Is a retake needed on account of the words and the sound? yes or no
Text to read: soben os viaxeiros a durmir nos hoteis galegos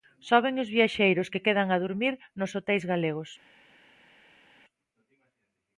yes